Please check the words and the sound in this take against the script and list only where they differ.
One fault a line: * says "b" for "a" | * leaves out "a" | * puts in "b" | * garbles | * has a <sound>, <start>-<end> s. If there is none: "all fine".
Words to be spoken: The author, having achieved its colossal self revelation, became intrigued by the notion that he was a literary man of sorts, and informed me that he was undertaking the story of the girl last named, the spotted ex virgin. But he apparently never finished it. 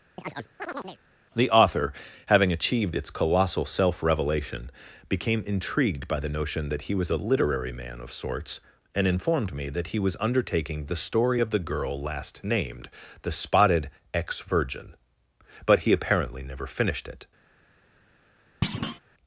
* has a chirp, 0.2-1.0 s
* has a thud, 18.6-19.0 s